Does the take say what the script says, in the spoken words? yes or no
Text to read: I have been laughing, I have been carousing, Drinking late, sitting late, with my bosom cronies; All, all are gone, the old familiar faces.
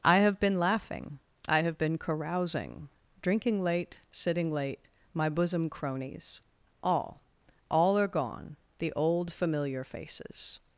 no